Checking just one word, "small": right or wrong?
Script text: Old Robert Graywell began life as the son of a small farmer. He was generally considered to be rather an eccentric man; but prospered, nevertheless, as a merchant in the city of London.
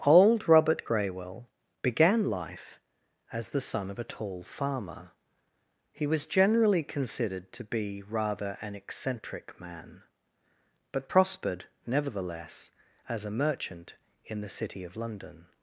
wrong